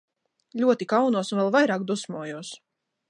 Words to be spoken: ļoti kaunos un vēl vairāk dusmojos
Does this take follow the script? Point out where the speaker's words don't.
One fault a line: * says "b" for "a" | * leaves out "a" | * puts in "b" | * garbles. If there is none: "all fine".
all fine